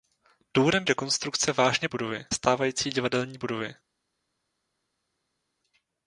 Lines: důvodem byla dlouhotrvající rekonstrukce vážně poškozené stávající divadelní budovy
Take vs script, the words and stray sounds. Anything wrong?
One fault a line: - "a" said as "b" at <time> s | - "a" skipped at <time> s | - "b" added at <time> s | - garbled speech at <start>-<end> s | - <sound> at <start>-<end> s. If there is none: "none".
- "byla dlouhotrvající" skipped at 0.8 s
- "poškozené" said as "budovy" at 1.9 s